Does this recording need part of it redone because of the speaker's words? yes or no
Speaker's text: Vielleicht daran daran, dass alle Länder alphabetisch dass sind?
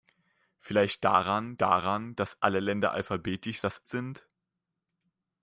no